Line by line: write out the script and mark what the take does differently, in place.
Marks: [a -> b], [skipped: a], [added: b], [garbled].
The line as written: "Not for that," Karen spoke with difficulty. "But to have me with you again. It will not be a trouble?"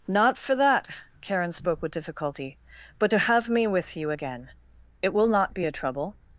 "Not for that," Karen spoke with difficulty. "But to have me with you again. It will not be a trouble?"